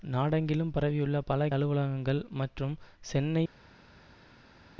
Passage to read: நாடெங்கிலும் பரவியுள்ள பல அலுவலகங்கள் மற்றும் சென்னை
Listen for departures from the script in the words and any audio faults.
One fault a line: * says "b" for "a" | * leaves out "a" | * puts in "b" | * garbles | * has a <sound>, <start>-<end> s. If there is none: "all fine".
all fine